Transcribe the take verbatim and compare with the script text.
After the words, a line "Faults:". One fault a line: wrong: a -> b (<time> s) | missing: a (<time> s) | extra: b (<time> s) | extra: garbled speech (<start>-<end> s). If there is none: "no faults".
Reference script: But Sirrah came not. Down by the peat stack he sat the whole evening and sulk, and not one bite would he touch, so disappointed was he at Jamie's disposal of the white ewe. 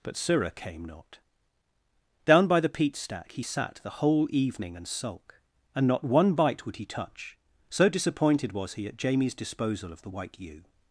But Sirrah came not. Down by the peat stack he sat the whole evening and sulk, and not one bite would he touch, so disappointed was he at Jamie's disposal of the white ewe.
Faults:
no faults